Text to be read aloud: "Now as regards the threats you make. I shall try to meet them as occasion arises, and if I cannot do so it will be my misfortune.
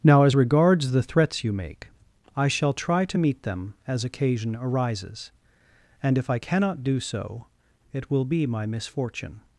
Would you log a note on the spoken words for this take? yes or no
no